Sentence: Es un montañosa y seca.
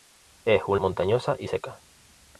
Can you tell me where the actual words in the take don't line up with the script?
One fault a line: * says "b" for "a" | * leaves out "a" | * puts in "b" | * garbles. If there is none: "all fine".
all fine